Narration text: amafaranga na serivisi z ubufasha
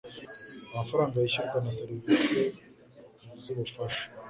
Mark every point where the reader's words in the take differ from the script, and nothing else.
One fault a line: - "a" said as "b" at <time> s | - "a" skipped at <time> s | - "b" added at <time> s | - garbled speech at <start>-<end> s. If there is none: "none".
- "yishyurwa" added at 1.2 s